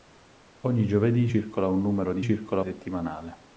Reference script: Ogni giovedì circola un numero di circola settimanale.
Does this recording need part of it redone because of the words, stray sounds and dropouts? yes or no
no